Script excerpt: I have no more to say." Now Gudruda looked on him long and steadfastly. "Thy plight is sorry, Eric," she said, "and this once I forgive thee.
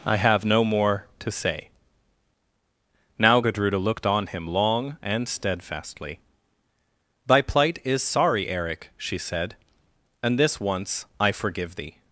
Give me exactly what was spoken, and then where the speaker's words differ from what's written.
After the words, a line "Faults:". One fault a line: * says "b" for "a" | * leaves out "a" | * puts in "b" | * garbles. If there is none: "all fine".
I have no more to say." Now Gudruda looked on him long and steadfastly. "Thy plight is sorry, Eric," she said, "and this once I forgive thee.
Faults:
all fine